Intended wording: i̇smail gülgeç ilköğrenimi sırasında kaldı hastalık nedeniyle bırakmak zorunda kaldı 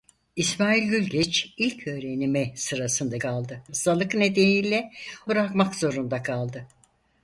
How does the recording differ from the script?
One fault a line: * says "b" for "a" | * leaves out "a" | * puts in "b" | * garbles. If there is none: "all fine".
all fine